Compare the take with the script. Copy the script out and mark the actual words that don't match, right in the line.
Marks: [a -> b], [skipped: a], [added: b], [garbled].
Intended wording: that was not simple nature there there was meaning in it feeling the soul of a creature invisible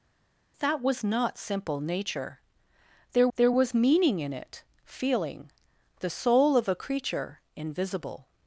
that was not simple nature there there was meaning in it feeling the soul of a creature invisible